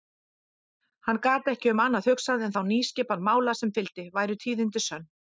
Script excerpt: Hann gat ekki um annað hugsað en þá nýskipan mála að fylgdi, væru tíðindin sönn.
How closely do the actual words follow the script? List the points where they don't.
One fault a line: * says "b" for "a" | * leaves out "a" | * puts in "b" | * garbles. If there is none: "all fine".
* says "sem" for "að"